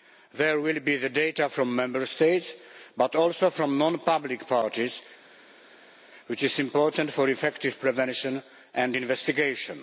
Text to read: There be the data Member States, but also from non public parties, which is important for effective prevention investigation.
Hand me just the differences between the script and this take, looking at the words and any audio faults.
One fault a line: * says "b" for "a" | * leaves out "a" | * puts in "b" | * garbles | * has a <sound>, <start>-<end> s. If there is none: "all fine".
* puts in "will"
* puts in "from"
* puts in "and"